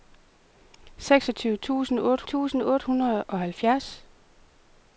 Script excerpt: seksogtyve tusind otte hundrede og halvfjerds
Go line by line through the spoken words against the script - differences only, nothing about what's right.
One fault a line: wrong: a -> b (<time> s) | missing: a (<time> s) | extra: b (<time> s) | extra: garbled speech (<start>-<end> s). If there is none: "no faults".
extra: tusind otte (2.2 s)